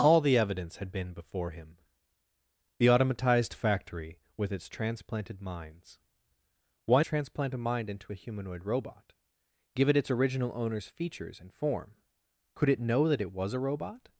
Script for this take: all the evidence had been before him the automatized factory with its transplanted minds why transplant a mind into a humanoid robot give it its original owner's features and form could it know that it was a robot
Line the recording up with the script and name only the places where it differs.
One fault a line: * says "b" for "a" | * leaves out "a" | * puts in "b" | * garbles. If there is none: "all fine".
all fine